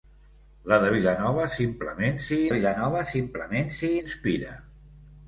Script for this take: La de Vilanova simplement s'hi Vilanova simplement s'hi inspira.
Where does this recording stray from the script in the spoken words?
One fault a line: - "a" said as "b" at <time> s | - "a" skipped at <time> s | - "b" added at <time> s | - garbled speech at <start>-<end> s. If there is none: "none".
none